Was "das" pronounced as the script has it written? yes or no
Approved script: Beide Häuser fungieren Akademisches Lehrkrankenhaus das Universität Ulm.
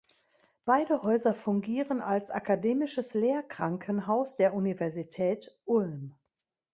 no